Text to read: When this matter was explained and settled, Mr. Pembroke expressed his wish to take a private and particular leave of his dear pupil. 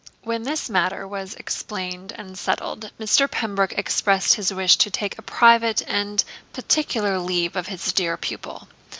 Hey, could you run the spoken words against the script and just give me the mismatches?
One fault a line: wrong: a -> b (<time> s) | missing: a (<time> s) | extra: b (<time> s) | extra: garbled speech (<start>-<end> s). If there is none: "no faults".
no faults